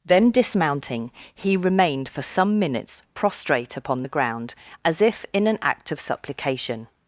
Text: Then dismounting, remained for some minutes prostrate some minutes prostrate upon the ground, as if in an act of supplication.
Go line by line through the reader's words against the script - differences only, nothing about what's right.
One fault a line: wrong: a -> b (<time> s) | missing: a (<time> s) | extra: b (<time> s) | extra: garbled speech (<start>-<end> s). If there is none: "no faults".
extra: he (1.3 s)
missing: some minutes prostrate (3.8 s)